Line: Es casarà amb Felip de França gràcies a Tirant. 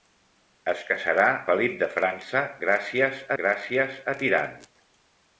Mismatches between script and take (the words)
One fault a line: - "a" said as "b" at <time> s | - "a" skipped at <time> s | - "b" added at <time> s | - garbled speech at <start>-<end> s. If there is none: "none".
- "amb" skipped at 1.3 s
- "gràcies" added at 3.4 s